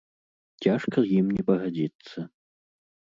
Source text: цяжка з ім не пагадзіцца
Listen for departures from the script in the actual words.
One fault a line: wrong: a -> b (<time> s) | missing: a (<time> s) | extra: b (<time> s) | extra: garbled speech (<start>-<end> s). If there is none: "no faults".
no faults